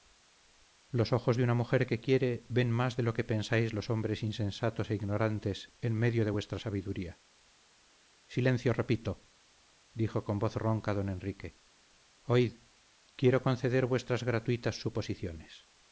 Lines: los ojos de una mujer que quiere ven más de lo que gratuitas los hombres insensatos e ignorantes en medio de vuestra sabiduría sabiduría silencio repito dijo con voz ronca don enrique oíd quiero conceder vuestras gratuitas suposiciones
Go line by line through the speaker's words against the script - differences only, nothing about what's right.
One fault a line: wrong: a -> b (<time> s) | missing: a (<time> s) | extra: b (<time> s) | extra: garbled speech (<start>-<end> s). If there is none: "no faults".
wrong: gratuitas -> pensáis (3.2 s)
missing: sabiduría (7.2 s)